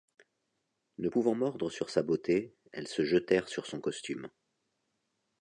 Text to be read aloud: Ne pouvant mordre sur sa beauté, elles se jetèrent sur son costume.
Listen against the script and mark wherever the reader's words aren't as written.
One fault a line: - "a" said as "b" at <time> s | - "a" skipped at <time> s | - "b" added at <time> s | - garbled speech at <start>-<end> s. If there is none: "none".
none